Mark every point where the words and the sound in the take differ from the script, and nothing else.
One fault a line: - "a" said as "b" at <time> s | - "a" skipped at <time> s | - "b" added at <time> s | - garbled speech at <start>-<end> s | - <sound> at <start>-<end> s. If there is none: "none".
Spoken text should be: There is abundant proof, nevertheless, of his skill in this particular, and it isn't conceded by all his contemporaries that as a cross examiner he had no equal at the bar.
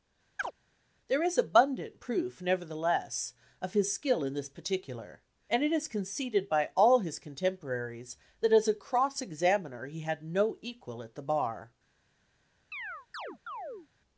- chirp at 0.4-0.5 s
- "isn't" said as "is" at 5.7 s
- chirp at 12.7-13.9 s